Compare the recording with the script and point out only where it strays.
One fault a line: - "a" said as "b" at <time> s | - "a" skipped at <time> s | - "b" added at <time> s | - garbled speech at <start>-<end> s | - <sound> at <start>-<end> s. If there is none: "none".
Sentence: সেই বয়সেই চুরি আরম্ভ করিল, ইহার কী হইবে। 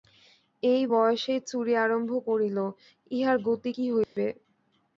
- "সেই" said as "এই" at 0.6 s
- "গতি" added at 3.5 s
- dropout at 4.0-4.2 s